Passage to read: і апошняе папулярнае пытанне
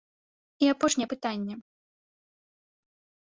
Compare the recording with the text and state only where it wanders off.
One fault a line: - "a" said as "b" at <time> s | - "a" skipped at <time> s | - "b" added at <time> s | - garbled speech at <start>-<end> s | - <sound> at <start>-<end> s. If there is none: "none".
- "папулярнае" skipped at 1.1 s